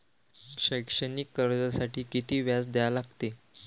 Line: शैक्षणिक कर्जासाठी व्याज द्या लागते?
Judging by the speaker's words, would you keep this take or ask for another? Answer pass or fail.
fail